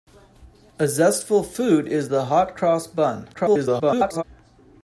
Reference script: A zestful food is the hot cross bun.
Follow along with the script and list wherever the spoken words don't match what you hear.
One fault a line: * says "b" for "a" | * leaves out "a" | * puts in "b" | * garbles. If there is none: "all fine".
* garbles